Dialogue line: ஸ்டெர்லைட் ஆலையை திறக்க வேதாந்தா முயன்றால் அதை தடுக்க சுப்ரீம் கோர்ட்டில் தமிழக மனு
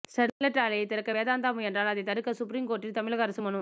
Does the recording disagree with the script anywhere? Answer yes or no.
yes